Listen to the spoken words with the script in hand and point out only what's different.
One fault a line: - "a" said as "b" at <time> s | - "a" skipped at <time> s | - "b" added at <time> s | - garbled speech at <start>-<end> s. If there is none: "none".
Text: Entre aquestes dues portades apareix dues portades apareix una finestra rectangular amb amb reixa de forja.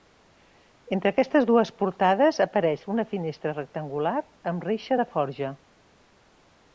- "dues portades apareix" skipped at 2.9 s
- "amb" skipped at 4.7 s